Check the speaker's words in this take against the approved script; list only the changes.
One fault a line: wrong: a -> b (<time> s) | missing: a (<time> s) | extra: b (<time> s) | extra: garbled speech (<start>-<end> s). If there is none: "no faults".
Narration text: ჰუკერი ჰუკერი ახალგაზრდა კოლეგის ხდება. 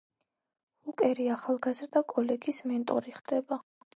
missing: ჰუკერი (1.3 s)
extra: მენტორი (2.7 s)